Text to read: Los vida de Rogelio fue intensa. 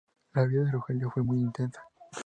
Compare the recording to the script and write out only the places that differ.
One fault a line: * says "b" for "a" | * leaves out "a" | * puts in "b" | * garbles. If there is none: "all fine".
* says "La" for "Los"
* puts in "muy"